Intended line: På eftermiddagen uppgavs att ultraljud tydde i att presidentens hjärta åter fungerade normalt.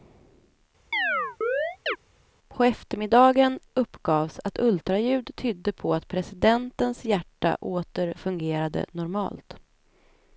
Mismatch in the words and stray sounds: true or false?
true